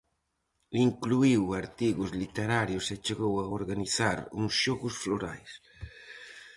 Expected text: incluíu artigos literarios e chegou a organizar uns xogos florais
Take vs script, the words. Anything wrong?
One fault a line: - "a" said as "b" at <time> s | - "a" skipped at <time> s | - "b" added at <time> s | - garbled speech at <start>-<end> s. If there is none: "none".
none